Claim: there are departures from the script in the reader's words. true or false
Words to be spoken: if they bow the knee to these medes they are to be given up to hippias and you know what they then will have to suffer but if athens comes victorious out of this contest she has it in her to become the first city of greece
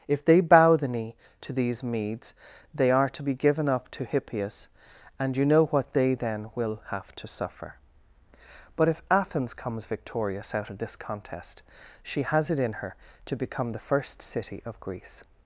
false